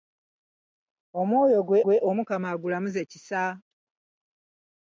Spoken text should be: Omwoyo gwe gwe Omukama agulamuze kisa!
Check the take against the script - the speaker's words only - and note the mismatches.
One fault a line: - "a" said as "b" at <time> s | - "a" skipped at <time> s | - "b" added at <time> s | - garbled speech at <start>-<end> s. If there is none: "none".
none